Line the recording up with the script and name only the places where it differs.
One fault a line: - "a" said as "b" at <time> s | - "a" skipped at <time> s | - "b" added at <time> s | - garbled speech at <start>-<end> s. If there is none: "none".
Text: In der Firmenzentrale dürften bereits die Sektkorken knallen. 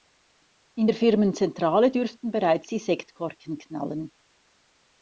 none